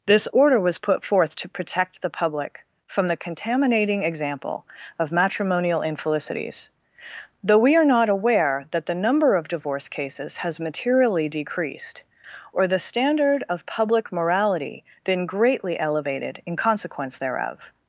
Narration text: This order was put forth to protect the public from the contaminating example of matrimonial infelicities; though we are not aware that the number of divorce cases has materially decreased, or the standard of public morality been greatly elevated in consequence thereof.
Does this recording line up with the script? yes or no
yes